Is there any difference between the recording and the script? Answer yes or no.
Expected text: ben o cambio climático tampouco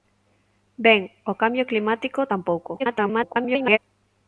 yes